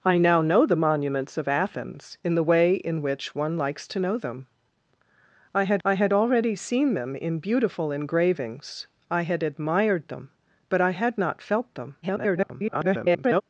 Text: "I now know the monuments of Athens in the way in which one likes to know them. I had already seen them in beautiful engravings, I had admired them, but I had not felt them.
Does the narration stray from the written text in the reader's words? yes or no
yes